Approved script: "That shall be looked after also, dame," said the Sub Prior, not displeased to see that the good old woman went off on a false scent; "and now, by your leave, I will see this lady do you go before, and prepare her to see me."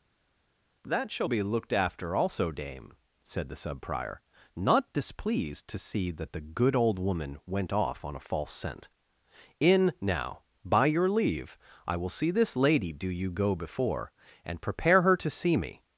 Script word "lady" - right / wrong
right